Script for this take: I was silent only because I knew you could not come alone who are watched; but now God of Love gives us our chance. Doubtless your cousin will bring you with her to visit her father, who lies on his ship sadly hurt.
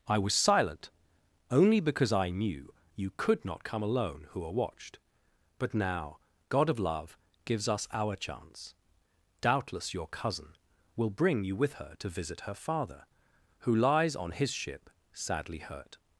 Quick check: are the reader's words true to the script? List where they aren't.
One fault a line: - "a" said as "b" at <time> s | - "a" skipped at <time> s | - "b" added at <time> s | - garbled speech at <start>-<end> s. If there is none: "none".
none